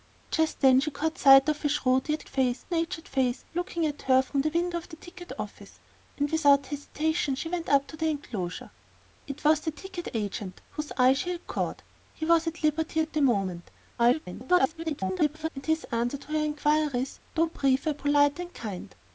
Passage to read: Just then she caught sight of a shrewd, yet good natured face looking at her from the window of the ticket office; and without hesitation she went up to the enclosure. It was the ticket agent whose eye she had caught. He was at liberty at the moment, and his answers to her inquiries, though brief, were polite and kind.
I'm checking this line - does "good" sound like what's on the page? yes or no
no